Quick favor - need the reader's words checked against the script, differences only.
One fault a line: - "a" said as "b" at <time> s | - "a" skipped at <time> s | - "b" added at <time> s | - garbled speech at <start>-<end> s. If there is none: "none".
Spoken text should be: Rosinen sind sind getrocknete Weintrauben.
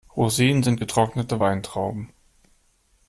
- "sind" skipped at 0.8 s